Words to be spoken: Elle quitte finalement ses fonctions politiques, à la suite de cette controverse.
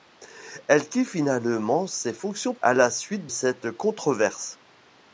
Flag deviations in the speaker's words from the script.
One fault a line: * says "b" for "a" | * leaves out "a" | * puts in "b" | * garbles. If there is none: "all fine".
* leaves out "politiques"
* leaves out "de"